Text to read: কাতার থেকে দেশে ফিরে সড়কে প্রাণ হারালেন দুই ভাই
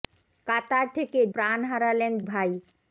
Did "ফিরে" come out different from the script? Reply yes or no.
yes